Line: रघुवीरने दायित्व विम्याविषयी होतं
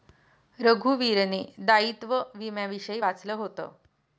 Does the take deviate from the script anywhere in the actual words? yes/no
yes